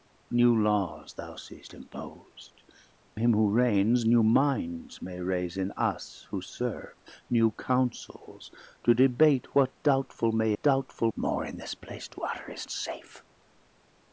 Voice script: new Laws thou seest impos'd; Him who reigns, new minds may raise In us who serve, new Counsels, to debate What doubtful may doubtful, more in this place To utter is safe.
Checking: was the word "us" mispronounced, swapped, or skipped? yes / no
no